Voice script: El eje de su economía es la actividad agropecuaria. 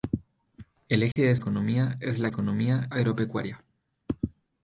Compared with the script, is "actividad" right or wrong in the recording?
wrong